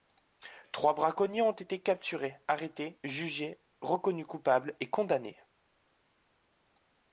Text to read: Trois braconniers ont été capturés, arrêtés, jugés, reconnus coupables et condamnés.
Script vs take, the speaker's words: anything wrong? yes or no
no